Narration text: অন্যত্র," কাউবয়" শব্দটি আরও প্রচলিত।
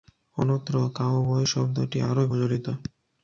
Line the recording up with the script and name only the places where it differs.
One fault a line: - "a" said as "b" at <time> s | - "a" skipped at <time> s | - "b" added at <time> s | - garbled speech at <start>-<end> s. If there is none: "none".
none